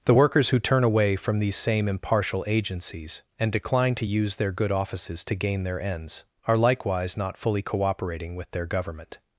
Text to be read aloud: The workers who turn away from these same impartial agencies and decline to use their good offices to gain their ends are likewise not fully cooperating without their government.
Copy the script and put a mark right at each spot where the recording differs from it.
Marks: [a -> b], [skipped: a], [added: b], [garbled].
The workers who turn away from these same impartial agencies and decline to use their good offices to gain their ends are likewise not fully cooperating [without -> with] their government.